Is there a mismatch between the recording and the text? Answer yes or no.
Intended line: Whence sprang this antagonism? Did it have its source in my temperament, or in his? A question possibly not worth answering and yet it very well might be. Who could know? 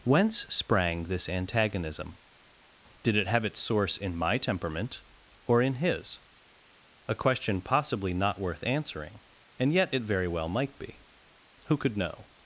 no